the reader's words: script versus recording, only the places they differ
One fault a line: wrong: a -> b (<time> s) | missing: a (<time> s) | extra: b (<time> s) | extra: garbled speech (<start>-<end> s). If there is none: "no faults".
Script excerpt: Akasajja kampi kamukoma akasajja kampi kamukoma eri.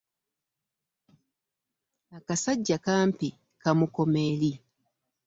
missing: akasajja kampi kamukoma (4.2 s)